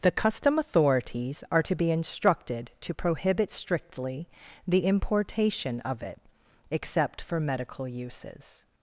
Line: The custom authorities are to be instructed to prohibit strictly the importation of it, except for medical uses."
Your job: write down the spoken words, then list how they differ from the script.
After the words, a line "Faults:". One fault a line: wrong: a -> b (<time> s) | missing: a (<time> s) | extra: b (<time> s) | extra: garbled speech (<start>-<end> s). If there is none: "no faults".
The custom authorities are to be instructed to prohibit strictly the importation of it, except for medical uses."
Faults:
no faults